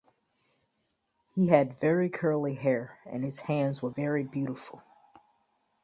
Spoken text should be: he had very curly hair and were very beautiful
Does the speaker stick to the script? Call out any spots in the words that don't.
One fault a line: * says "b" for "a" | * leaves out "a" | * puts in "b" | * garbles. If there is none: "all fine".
* puts in "his hands"